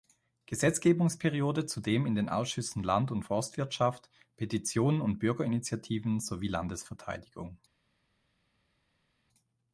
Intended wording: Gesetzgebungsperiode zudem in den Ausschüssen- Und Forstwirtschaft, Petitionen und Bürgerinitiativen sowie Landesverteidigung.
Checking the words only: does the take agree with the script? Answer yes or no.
no